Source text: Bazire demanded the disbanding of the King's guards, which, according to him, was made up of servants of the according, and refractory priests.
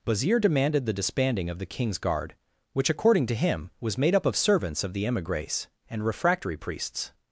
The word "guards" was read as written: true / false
false